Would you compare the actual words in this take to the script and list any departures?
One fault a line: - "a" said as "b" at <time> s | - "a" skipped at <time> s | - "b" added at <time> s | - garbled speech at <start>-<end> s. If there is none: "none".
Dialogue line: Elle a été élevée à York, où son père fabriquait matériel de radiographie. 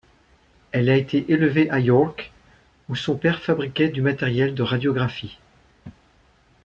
- "du" added at 3.9 s